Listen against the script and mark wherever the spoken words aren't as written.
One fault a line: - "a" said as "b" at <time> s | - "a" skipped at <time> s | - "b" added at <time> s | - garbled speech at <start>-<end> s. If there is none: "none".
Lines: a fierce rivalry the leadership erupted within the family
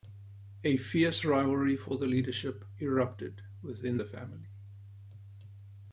- "for" added at 1.8 s